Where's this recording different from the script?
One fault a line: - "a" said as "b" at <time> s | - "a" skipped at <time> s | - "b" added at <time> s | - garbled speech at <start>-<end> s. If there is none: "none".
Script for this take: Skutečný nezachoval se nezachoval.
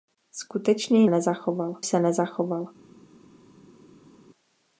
none